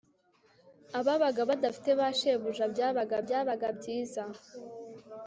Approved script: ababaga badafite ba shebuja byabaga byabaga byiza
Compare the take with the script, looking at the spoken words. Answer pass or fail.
pass